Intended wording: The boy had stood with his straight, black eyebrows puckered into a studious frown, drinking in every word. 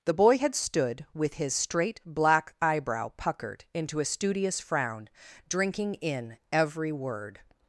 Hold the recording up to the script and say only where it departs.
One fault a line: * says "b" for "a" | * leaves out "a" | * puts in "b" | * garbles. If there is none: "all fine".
* says "eyebrow" for "eyebrows"